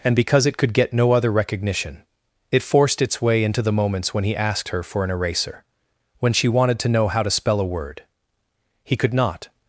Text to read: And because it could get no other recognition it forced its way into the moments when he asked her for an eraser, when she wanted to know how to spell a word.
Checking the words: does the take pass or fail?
fail